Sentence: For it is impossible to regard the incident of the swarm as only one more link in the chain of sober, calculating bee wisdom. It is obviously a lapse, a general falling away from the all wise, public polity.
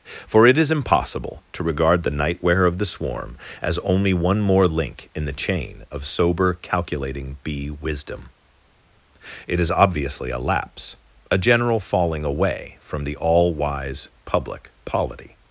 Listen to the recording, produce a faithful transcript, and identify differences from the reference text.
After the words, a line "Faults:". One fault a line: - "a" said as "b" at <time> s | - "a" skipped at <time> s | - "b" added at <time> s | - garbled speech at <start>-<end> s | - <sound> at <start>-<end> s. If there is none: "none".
For it is impossible to regard the nightwear of the swarm as only one more link in the chain of sober, calculating bee wisdom. It is obviously a lapse, a general falling away from the all wise, public polity.
Faults:
- "incident" said as "nightwear" at 2.1 s